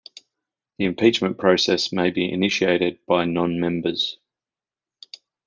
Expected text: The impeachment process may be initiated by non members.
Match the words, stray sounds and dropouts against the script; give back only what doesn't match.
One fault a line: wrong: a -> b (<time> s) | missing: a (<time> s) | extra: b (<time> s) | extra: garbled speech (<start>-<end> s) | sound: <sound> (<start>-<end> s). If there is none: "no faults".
no faults